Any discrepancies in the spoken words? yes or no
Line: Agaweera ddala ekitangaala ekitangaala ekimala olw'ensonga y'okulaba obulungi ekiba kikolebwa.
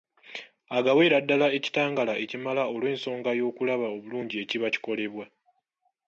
yes